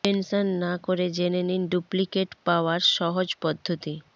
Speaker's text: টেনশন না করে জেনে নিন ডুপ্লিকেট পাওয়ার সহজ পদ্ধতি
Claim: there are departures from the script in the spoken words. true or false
false